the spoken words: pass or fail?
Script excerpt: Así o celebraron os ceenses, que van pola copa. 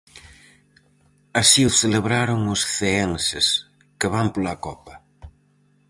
pass